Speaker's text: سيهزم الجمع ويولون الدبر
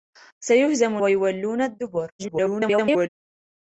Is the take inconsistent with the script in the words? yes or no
yes